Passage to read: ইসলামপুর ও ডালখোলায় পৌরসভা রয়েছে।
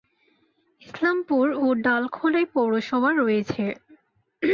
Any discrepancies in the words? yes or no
no